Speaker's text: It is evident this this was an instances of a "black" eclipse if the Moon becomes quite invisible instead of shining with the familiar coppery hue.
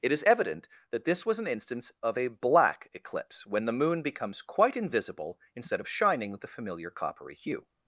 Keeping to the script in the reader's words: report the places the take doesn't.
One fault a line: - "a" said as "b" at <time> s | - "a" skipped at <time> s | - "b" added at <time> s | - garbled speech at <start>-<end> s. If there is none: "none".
- "this" said as "that" at 0.9 s
- "instances" said as "instance" at 1.5 s
- "if" said as "when" at 3.4 s